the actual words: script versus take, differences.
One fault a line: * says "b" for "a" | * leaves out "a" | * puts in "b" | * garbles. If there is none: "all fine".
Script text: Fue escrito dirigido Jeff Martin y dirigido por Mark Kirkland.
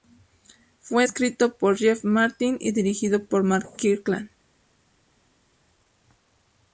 * says "por" for "dirigido"